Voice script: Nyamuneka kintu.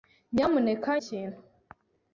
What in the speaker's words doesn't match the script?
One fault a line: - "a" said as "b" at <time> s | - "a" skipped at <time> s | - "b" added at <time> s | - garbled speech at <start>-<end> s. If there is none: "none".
none